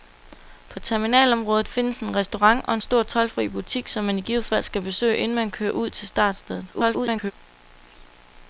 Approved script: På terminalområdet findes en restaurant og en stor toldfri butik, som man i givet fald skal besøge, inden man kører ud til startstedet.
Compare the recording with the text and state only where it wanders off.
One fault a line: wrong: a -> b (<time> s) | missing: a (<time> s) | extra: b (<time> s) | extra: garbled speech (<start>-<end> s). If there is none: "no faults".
extra: garbled speech (6.7-7.3 s)